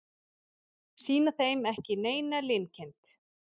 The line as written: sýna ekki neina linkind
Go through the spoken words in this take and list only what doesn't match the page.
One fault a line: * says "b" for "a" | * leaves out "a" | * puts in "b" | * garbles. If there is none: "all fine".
* puts in "þeim"